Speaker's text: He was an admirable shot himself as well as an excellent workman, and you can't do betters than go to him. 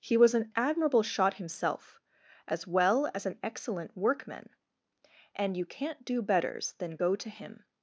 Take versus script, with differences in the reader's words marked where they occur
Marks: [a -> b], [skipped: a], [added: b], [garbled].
He was an admirable shot himself as well as an excellent workman, and you can't do betters than go to him.